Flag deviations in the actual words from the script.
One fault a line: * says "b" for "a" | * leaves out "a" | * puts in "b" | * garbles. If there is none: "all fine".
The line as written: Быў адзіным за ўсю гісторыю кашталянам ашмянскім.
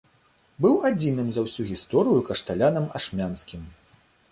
all fine